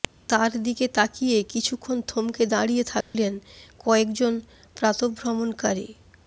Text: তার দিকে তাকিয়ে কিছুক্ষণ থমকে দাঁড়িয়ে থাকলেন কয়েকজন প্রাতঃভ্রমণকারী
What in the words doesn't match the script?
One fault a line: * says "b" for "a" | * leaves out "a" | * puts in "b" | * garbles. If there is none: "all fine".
all fine